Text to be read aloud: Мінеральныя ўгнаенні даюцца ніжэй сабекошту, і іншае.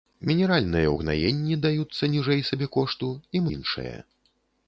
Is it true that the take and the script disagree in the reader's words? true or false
false